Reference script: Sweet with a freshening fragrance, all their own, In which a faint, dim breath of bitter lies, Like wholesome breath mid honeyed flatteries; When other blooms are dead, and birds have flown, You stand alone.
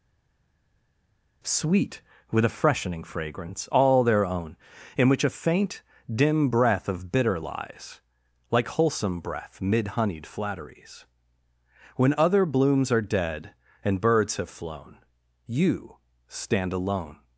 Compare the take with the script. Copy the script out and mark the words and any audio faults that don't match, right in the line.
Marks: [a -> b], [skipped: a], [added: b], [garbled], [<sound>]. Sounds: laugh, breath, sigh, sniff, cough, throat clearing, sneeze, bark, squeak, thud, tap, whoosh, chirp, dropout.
Sweet with a freshening fragrance, all their own, In which a faint, dim breath of bitter lies, Like wholesome breath mid honeyed flatteries; When other blooms are dead, and birds have flown, You stand alone.